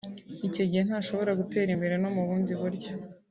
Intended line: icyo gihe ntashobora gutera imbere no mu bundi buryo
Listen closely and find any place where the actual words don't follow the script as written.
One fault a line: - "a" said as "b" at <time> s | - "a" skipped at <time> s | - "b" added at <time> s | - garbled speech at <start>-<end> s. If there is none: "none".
none